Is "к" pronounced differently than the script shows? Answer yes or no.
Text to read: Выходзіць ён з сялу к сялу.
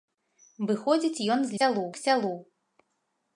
no